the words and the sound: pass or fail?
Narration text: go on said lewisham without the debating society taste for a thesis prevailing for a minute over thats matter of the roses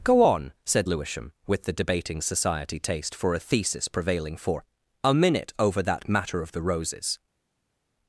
fail